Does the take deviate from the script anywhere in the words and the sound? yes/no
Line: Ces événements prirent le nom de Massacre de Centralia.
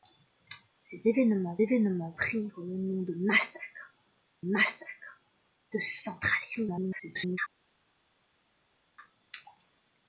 yes